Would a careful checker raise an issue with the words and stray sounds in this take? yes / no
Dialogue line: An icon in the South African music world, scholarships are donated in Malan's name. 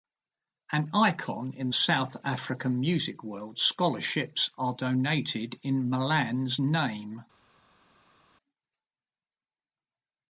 yes